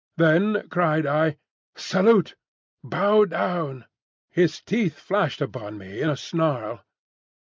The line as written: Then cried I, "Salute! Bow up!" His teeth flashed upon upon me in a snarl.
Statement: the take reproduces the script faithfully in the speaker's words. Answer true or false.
false